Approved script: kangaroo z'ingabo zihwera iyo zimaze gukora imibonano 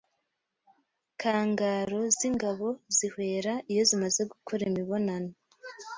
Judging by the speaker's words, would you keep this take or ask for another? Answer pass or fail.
pass